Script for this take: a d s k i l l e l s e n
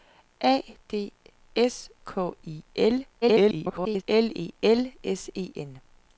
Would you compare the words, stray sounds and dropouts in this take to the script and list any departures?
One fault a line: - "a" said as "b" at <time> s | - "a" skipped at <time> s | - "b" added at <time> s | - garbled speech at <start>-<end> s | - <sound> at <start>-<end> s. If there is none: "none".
- garbled speech at 3.2-4.0 s